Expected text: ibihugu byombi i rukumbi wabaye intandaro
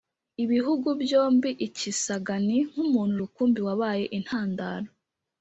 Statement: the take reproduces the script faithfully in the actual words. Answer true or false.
false